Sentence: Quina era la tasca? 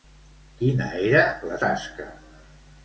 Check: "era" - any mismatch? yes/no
no